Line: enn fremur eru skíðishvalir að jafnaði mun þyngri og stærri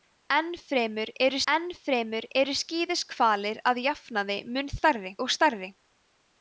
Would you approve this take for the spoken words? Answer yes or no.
no